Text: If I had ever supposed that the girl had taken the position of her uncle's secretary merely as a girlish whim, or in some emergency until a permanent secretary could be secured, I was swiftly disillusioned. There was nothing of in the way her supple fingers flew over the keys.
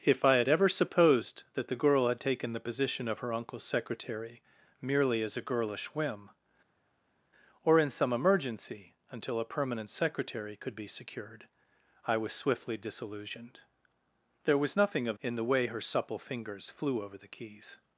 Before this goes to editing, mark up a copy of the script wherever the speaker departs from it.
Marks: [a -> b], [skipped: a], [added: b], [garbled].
If I had ever supposed that the girl had taken the position of her uncle's secretary merely as a girlish whim, or in some emergency until a permanent secretary could be secured, I was swiftly disillusioned. There was nothing of in the way her supple fingers flew over the keys.